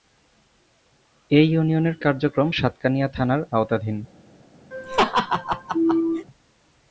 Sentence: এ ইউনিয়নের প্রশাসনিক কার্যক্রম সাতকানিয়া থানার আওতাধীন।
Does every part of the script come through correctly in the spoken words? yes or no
no